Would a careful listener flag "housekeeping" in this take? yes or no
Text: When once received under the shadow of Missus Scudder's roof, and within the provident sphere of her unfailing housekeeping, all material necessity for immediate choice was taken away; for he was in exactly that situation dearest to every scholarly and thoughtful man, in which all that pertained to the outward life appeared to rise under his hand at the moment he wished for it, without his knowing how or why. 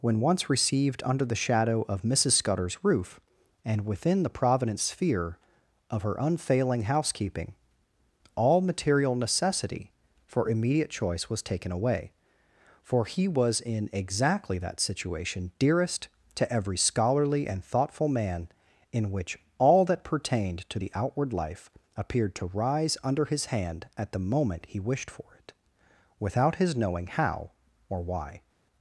no